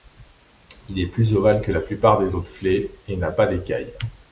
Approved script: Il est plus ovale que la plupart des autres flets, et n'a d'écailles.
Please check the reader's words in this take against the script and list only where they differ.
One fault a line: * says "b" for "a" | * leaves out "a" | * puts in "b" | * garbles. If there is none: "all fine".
* puts in "pas"